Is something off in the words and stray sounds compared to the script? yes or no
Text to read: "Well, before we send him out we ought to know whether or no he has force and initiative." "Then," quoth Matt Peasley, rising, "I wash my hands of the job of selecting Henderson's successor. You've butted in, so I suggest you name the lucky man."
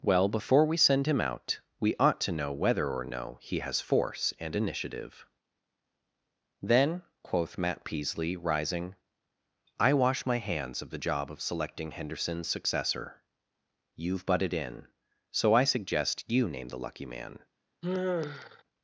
yes